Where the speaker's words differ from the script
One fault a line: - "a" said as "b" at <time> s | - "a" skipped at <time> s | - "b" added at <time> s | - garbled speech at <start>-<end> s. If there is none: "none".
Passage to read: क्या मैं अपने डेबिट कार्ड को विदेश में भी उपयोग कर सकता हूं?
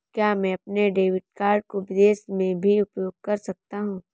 none